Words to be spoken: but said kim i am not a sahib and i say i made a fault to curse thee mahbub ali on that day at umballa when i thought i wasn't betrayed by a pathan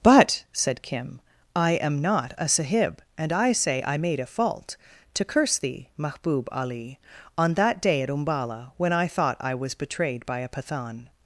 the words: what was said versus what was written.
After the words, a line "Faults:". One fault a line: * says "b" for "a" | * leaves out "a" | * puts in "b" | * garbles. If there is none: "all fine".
but said kim i am not a sahib and i say i made a fault to curse thee mahbub ali on that day at umballa when i thought i was betrayed by a pathan
Faults:
* says "was" for "wasn't"